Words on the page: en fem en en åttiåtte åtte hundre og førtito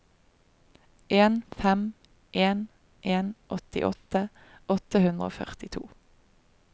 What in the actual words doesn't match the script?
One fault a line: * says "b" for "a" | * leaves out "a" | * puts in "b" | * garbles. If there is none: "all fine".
all fine